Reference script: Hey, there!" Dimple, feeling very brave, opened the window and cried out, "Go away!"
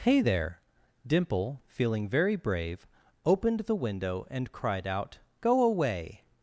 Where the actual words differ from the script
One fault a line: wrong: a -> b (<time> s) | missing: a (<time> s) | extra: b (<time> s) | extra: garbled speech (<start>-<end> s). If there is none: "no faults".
no faults